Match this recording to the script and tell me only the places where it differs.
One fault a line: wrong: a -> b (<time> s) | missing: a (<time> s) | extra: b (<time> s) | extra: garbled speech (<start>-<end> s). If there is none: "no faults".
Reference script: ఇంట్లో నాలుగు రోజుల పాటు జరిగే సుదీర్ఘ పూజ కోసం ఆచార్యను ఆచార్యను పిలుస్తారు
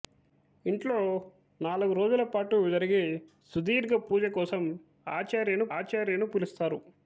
no faults